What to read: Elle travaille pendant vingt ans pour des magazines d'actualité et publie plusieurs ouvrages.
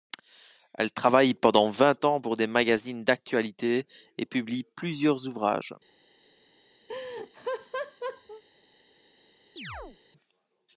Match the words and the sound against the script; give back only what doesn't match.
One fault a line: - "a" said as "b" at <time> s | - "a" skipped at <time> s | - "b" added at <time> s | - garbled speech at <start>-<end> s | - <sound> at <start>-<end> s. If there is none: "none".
- laugh at 6.9-8.4 s
- chirp at 9.6-10.0 s